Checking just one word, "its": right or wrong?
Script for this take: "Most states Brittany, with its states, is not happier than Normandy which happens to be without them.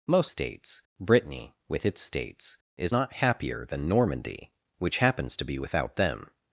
right